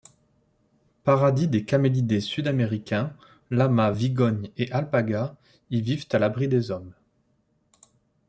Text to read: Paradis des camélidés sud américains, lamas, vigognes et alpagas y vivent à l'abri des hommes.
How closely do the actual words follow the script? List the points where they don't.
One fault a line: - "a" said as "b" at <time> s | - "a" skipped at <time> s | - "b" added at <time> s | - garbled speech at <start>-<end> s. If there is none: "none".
none